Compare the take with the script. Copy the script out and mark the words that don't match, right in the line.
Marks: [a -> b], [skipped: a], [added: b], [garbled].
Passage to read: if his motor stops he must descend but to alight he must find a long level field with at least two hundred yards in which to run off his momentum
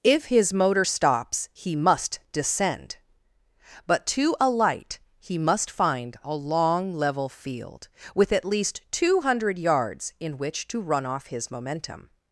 if his motor stops he must descend but to alight he must find a long level field with at least two hundred yards in which to run off his momentum